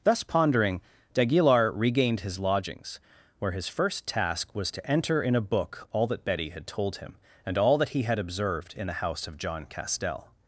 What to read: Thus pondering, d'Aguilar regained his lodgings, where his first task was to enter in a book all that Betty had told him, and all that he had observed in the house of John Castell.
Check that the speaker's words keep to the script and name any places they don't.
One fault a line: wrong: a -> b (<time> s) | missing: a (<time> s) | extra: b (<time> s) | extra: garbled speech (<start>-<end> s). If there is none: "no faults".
no faults